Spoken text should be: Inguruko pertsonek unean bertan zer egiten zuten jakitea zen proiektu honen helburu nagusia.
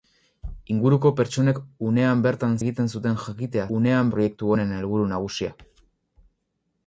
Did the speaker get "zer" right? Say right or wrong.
wrong